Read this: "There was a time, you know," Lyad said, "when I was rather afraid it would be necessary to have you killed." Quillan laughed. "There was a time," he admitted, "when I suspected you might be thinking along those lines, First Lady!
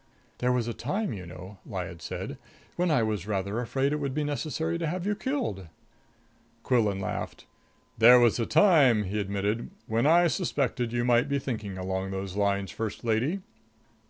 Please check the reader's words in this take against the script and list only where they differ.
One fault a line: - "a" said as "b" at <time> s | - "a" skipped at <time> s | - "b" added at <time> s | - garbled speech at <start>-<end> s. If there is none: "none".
none